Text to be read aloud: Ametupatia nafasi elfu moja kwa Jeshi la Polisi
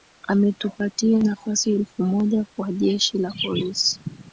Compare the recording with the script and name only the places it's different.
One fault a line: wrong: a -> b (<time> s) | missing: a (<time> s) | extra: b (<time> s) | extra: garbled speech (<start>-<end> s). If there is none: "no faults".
no faults